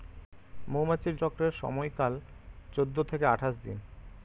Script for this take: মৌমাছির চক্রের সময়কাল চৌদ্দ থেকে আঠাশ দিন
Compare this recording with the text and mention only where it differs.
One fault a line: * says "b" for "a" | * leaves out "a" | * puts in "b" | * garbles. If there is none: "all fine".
all fine